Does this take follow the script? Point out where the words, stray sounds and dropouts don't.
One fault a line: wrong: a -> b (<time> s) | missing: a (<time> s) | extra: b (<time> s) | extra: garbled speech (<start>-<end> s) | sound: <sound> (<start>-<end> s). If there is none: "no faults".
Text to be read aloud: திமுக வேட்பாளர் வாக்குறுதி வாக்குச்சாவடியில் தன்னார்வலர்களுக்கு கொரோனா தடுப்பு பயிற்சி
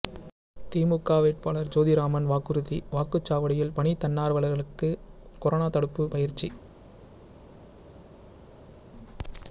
extra: ஜோதிராமன் (1.7 s)
extra: பணி (3.7 s)